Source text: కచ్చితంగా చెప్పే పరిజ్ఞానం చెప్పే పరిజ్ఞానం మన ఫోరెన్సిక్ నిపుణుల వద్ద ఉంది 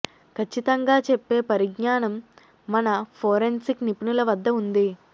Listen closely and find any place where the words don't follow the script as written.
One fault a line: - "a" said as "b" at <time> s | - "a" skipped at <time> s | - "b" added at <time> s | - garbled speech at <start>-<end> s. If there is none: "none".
- "చెప్పే పరిజ్ఞానం" skipped at 2.1 s